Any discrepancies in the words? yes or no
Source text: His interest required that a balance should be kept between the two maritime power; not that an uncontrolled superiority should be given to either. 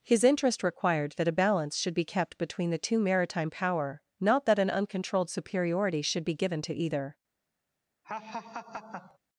no